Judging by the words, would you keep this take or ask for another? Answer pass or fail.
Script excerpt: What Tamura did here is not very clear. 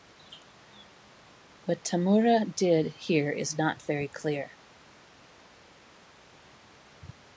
pass